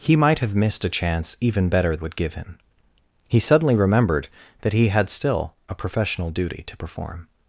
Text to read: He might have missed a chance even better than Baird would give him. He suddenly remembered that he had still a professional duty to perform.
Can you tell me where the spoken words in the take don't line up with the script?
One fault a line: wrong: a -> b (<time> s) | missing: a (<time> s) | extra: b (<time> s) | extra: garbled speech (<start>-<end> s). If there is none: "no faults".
missing: than Baird (1.9 s)